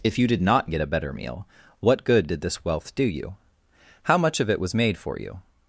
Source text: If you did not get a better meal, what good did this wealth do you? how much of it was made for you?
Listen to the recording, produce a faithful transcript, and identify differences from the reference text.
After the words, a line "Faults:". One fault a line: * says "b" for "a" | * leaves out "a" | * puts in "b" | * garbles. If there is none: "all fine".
If you did not get a better meal, what good did this wealth do you? how much of it was made for you?
Faults:
all fine